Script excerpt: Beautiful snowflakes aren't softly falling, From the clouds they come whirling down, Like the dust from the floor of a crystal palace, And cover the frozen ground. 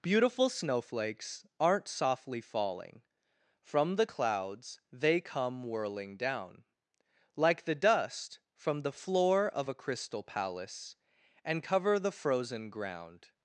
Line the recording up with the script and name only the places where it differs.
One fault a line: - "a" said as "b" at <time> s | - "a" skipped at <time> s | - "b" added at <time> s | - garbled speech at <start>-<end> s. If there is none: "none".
none